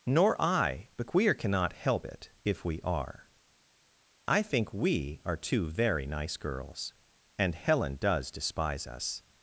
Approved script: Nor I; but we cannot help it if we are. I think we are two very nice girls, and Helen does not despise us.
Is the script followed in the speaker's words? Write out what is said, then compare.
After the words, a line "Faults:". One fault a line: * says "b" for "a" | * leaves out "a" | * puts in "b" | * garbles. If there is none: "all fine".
Nor I; but we cannot help it if we are. I think we are two very nice girls, and Helen does despise us.
Faults:
* leaves out "not"